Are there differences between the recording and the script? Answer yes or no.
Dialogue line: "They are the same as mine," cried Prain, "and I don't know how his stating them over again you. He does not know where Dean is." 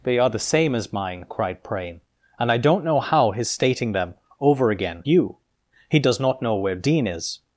no